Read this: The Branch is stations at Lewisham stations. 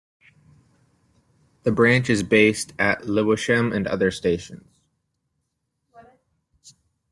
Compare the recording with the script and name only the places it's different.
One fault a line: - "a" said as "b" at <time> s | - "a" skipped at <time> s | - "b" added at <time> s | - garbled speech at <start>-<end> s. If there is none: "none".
- "stations" said as "based" at 2.2 s
- "and other" added at 3.7 s